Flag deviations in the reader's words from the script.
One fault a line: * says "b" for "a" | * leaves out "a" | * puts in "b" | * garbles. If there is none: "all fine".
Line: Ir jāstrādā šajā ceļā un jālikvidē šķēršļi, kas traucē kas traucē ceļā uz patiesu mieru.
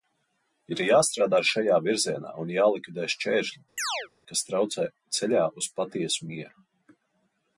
* says "virzienā" for "ceļā"
* leaves out "kas traucē"